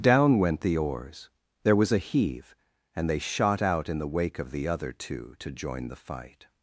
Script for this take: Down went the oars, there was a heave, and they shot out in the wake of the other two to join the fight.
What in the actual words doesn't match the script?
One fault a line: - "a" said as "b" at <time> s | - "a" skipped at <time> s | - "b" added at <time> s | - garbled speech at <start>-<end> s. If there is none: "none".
none